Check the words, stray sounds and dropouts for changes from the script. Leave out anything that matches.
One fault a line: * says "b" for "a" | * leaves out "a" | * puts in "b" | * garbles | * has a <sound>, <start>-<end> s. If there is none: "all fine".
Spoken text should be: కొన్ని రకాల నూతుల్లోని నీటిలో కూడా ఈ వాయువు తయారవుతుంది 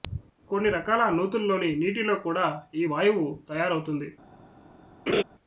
* has a laugh, 5.1-5.2 s